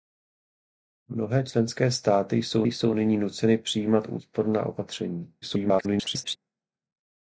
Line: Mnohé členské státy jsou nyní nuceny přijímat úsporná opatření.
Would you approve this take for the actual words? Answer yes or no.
no